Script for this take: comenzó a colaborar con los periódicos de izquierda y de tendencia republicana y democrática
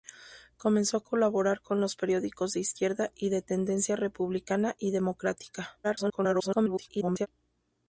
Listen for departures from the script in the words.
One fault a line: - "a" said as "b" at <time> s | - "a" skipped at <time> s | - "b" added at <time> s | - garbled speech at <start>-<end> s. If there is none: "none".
- garbled speech at 5.8-7.3 s